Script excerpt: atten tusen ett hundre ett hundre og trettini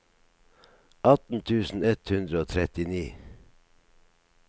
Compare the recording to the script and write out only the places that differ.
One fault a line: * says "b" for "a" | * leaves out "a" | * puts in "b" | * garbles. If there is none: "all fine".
* leaves out "ett hundre"